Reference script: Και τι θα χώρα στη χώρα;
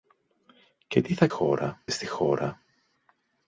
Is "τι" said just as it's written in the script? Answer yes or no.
yes